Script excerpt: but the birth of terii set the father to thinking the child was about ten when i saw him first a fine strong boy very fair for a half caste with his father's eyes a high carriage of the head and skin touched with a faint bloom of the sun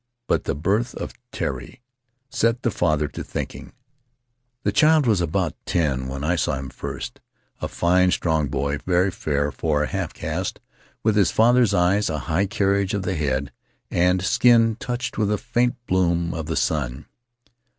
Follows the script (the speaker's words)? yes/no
yes